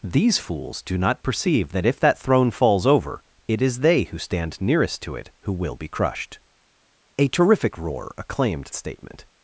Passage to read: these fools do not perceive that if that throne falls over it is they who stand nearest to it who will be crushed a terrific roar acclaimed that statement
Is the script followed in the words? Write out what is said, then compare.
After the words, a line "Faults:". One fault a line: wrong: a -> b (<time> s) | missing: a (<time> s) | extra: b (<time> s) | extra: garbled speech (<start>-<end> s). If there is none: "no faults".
these fools do not perceive that if that throne falls over it is they who stand nearest to it who will be crushed a terrific roar acclaimed statement
Faults:
missing: that (8.7 s)